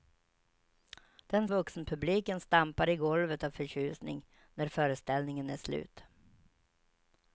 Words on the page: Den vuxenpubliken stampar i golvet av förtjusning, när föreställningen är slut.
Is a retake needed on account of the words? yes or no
no